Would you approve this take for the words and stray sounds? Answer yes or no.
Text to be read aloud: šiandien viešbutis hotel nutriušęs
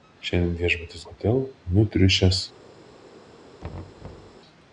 no